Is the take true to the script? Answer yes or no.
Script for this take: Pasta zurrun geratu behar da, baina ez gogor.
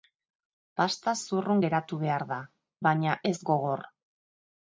yes